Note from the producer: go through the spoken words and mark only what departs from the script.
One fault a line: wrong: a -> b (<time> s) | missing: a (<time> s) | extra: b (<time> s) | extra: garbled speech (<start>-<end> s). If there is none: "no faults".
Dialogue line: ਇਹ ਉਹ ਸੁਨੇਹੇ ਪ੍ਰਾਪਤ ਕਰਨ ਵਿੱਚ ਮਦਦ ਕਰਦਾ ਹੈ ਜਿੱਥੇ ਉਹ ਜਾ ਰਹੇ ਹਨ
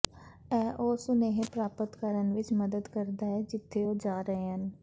no faults